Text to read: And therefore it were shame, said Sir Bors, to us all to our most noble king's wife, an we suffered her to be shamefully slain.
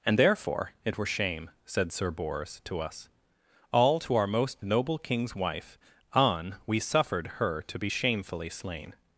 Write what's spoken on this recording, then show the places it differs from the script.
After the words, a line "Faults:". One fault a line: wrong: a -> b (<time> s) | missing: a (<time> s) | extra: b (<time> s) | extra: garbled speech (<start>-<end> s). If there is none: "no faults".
And therefore it were shame, said Sir Bors, to us all to our most noble king's wife, an we suffered her to be shamefully slain.
Faults:
no faults